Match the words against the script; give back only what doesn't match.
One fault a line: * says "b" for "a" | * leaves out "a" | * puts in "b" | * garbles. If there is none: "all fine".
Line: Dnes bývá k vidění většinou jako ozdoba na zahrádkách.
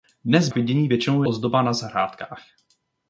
* leaves out "bývá"
* leaves out "jako"